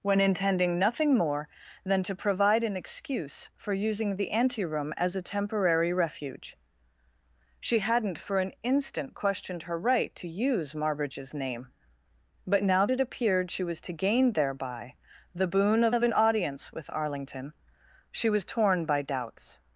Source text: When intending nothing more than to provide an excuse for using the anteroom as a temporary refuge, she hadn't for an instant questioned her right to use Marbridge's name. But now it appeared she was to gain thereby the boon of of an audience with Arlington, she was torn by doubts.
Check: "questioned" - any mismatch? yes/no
no